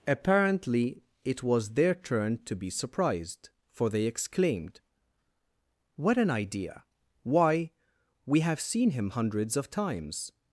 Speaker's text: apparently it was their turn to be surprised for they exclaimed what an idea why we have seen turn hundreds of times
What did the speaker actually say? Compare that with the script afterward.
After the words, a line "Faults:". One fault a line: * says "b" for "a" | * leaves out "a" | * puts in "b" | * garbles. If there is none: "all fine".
apparently it was their turn to be surprised for they exclaimed what an idea why we have seen him hundreds of times
Faults:
* says "him" for "turn"